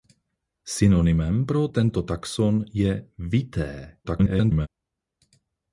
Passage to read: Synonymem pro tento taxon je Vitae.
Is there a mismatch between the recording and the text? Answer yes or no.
yes